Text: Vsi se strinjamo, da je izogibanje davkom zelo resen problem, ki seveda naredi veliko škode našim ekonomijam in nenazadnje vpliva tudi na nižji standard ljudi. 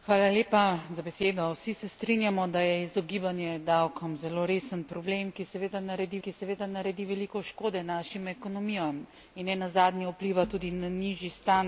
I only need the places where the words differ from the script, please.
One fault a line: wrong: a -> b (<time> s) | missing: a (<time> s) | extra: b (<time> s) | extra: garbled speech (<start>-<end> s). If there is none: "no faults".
extra: ki seveda naredi (6.2 s)